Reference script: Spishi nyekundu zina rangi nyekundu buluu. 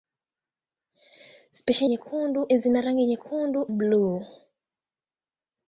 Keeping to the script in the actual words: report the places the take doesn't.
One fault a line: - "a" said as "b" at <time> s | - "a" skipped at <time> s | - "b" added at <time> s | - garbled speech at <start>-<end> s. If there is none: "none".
none